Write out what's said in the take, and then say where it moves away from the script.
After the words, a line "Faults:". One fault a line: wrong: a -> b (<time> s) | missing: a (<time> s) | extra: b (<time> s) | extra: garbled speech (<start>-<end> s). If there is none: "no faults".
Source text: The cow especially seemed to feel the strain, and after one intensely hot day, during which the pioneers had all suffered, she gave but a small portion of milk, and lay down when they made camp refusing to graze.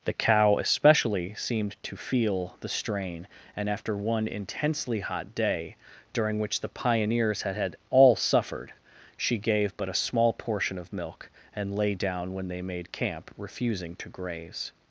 The cow especially seemed to feel the strain, and after one intensely hot day, during which the pioneers had had all suffered, she gave but a small portion of milk, and lay down when they made camp refusing to graze.
Faults:
extra: had (7.5 s)